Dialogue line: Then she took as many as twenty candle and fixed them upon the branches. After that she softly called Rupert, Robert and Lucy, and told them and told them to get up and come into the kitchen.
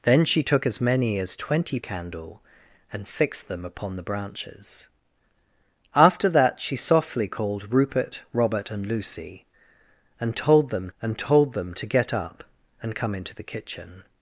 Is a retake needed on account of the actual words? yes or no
no